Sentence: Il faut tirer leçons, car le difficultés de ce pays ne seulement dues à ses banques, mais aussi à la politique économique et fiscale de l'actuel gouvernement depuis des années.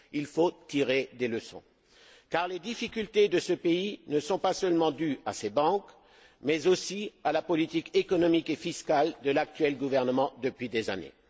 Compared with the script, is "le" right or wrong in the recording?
wrong